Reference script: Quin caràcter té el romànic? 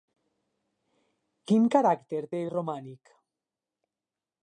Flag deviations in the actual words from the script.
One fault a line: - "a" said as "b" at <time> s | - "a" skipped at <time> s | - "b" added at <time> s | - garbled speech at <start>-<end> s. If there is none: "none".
none